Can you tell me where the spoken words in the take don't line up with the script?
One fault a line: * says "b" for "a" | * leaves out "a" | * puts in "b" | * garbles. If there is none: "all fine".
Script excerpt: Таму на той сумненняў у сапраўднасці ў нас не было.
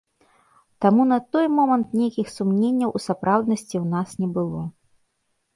* puts in "момант нейкіх"